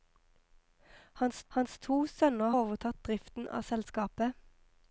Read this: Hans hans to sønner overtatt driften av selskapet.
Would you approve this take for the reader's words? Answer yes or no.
yes